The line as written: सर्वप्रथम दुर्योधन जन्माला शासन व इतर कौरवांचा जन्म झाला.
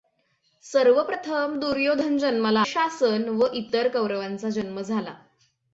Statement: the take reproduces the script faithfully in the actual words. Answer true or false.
true